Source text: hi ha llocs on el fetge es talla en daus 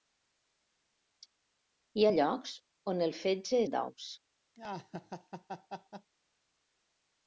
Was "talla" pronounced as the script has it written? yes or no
no